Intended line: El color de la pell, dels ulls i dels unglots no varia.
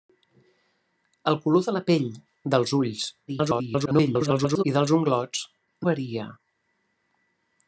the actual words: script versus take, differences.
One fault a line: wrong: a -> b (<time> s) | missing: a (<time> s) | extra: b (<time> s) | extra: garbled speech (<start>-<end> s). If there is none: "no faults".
extra: garbled speech (3.3-4.6 s)
missing: no (5.4 s)